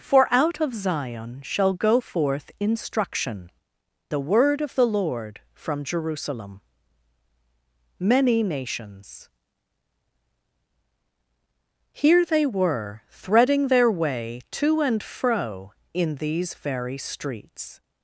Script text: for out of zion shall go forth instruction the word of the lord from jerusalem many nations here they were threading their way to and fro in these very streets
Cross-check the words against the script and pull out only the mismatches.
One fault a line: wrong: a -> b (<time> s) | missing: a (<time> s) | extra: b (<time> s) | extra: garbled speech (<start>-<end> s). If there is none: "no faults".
no faults